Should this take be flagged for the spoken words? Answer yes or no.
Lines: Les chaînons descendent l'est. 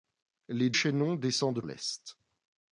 no